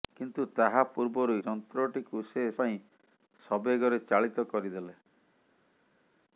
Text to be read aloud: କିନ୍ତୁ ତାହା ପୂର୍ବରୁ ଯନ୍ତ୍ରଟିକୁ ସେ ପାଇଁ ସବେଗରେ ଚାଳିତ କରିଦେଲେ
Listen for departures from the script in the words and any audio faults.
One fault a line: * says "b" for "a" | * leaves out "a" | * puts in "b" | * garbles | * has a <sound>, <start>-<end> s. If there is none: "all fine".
all fine